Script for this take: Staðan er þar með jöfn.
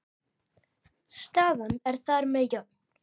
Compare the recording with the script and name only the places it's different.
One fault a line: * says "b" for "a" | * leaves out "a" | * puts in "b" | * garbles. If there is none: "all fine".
all fine